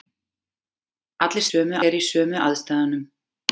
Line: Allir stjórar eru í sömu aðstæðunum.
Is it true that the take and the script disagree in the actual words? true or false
true